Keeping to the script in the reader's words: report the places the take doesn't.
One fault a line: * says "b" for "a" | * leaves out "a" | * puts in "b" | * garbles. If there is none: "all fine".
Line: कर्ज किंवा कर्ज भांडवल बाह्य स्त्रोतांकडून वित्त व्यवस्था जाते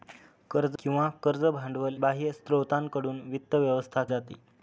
all fine